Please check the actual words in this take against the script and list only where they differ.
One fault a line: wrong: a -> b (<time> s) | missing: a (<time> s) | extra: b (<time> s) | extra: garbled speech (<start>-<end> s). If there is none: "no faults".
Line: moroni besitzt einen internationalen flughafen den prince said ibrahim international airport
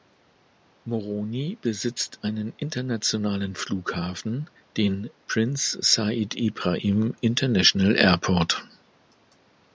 no faults